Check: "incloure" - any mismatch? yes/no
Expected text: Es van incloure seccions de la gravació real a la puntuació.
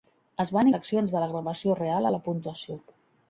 yes